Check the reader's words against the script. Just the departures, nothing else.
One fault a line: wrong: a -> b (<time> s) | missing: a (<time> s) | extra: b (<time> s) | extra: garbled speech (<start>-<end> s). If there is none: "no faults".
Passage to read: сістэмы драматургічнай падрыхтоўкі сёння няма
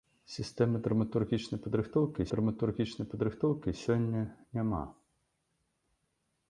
extra: драматургічнай падрыхтоўкі (2.3 s)